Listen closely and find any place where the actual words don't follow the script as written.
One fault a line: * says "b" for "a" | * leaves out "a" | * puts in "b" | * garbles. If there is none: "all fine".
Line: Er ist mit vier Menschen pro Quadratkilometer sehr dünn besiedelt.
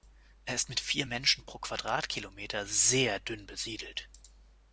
all fine